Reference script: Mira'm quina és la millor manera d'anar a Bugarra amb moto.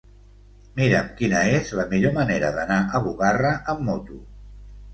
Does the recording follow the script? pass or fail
pass